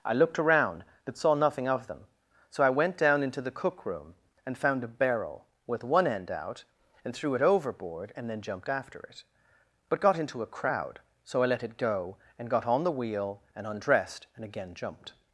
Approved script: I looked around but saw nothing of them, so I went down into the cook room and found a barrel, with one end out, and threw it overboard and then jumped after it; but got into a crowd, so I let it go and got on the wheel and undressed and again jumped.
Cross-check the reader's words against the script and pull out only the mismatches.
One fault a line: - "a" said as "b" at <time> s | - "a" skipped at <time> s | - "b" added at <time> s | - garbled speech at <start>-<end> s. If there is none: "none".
none